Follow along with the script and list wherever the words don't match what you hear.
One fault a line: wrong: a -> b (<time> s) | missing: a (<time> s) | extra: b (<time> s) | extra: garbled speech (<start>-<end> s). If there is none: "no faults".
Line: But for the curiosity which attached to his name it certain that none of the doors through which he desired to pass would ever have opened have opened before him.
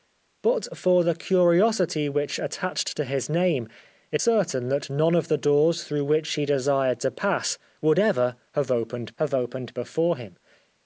no faults